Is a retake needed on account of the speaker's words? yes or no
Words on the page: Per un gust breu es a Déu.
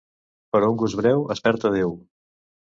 yes